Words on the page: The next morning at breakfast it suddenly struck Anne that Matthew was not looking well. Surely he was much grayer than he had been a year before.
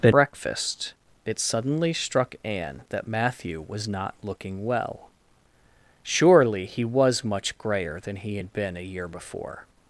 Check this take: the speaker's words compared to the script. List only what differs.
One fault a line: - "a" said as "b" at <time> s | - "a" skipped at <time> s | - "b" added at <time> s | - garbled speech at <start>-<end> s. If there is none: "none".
- "next morning at" skipped at 0.1 s